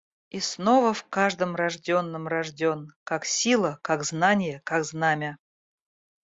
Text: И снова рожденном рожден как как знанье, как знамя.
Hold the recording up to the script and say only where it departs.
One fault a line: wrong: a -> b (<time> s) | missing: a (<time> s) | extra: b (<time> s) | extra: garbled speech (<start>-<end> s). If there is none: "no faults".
extra: в каждом (0.9 s)
extra: сила (3.3 s)